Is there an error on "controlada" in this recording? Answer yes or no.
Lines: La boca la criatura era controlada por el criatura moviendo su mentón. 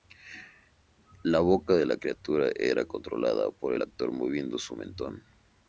no